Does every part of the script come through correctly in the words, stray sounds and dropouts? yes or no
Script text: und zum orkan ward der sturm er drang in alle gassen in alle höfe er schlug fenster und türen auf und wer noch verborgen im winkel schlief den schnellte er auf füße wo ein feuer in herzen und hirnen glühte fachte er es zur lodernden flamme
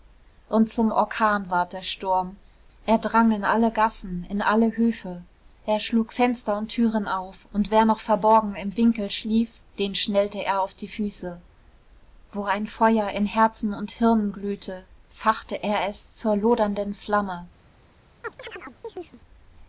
no